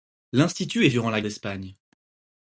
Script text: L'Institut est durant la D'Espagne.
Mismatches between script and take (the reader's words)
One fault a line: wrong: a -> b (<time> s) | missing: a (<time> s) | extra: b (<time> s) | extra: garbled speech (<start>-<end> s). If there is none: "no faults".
no faults